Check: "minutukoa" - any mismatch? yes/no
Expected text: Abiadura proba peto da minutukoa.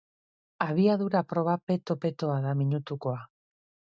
no